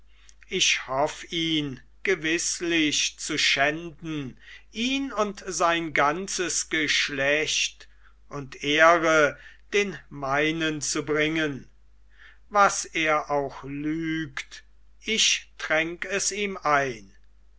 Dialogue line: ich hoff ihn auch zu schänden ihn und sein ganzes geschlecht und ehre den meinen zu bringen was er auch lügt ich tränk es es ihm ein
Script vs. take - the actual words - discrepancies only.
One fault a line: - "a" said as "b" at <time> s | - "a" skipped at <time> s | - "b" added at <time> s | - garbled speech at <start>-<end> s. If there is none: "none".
- "auch" said as "gewißlich" at 2.0 s
- "es" skipped at 16.3 s